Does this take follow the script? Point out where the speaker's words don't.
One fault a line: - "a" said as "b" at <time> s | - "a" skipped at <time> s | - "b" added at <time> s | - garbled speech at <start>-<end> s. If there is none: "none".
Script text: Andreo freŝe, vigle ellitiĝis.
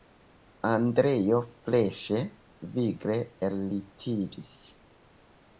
none